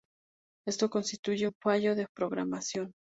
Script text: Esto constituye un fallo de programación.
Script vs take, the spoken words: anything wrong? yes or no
no